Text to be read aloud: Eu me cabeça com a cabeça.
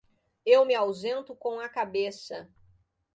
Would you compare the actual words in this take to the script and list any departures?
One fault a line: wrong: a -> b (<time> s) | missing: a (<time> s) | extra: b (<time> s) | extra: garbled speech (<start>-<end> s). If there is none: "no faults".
wrong: cabeça -> ausento (0.7 s)